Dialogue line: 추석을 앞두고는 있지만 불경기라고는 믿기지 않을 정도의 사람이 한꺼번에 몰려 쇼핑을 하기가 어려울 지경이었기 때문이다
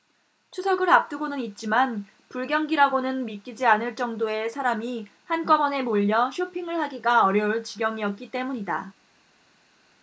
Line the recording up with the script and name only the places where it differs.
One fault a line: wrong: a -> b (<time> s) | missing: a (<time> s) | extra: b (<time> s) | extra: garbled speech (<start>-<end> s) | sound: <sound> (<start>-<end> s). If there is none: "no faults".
no faults